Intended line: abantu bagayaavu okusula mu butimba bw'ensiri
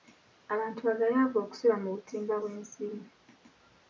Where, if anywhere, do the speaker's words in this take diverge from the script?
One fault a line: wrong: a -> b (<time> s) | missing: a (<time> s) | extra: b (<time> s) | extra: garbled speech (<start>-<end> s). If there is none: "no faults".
no faults